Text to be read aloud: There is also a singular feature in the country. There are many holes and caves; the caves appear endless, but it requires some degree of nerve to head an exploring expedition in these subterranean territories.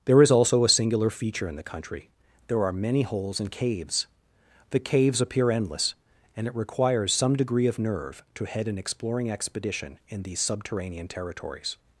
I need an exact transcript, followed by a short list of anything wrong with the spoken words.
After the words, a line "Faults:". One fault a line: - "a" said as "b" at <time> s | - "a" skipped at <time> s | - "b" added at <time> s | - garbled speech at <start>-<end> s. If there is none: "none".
There is also a singular feature in the country. There are many holes and caves; the caves appear endless, and it requires some degree of nerve to head an exploring expedition in these subterranean territories.
Faults:
- "but" said as "and" at 6.3 s